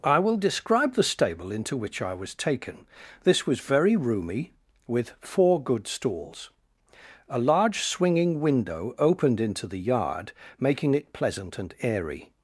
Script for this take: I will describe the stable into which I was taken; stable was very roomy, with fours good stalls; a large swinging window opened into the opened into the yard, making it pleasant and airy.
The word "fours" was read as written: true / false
false